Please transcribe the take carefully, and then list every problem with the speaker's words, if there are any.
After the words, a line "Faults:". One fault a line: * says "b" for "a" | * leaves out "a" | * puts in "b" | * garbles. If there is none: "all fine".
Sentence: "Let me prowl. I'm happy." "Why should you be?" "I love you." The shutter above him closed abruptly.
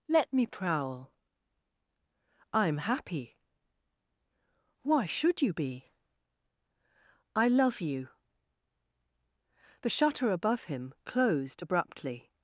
"Let me prowl. I'm happy." "Why should you be?" "I love you." The shutter above him closed abruptly.
Faults:
all fine